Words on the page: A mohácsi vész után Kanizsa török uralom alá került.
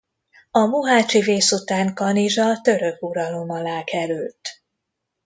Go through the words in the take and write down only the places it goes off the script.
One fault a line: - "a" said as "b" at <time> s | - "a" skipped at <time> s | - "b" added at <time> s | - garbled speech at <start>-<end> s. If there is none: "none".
none